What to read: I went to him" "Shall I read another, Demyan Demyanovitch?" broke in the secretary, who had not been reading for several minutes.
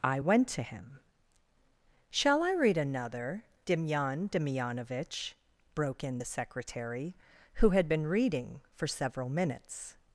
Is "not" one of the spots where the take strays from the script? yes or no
yes